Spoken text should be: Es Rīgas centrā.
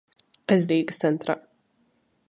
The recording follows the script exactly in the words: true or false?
true